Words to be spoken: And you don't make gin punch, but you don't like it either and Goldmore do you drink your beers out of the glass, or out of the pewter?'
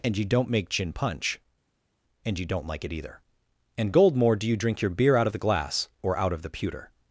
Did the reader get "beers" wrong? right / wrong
wrong